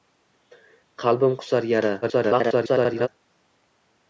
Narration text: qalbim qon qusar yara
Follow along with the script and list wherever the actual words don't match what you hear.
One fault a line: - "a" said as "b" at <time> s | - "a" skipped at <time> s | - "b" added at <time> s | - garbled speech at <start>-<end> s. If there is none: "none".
- "qon" skipped at 1.4 s
- garbled speech at 2.0-3.1 s